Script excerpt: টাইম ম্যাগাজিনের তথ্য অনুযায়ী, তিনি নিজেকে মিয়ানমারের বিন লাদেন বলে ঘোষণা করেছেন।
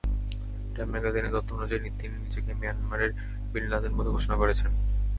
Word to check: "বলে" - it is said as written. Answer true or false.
true